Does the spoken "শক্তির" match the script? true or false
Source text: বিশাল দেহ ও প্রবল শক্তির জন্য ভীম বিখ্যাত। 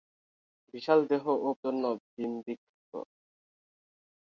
false